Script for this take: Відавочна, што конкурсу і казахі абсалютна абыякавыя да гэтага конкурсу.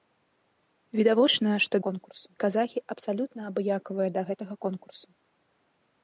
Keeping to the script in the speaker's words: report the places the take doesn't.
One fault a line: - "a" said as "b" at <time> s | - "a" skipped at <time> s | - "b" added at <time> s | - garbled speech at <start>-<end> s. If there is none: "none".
none